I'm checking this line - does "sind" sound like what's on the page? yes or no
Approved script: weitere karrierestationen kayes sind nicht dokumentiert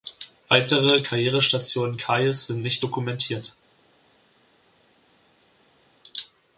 yes